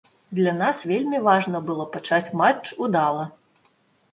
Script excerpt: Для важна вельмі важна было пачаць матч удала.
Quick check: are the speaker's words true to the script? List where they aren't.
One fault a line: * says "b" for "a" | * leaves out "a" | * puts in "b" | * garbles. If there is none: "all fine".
* says "нас" for "важна"